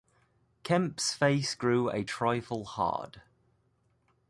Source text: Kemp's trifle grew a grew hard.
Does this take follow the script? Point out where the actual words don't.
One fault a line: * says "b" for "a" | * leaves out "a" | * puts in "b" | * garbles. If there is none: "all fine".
* says "face" for "trifle"
* says "trifle" for "grew"